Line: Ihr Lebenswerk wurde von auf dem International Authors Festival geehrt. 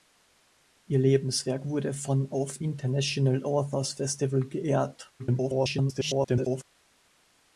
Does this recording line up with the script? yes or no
no